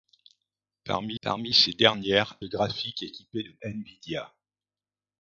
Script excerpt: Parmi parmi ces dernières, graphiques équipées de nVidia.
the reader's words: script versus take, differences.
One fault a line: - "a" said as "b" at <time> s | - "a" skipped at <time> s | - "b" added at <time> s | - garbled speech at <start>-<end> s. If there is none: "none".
none